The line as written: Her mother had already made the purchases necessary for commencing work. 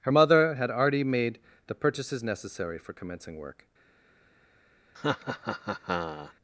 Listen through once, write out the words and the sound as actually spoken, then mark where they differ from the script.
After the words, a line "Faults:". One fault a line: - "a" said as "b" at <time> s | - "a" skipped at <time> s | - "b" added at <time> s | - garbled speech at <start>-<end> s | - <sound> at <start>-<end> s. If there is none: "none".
Her mother had already made the purchases necessary for commencing work.
Faults:
- laugh at 4.9-6.3 s